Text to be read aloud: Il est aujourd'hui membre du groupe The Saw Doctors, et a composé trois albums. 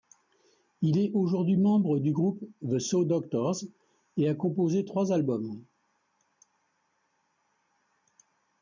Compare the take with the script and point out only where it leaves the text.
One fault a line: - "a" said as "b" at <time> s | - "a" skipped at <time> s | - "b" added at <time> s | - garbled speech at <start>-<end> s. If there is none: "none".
none